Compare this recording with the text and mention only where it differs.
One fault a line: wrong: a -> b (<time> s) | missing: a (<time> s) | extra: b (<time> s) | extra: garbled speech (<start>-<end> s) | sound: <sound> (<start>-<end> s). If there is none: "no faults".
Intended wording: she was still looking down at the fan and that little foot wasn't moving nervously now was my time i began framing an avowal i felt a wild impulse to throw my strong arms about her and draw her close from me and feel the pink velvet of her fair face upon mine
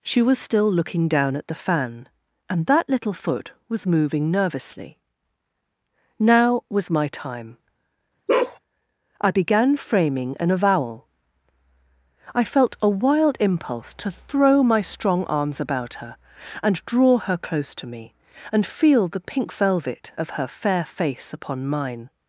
wrong: wasn't -> was (3.7 s)
sound: bark (8.3-8.6 s)
wrong: from -> to (17.8 s)